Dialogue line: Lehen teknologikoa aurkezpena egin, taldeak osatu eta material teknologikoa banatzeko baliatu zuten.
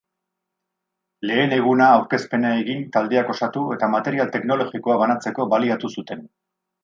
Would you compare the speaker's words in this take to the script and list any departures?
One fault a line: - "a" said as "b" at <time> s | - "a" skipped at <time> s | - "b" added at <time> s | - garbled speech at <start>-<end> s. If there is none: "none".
- "teknologikoa" said as "eguna" at 1.6 s